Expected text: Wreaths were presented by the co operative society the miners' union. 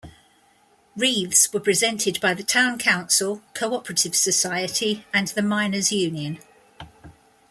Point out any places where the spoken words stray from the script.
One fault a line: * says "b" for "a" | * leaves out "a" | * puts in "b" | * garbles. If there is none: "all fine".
* puts in "town council"
* puts in "and"